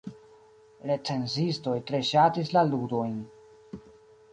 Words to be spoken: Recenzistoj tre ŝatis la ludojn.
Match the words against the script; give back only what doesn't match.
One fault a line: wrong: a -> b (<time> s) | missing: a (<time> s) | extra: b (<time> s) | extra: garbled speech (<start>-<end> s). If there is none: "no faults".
no faults